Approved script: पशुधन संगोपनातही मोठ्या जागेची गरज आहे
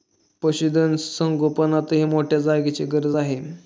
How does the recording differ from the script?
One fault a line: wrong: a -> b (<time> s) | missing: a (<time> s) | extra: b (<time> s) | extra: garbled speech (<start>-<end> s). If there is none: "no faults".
no faults